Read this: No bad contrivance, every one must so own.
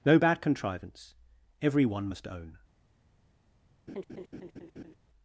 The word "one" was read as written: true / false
true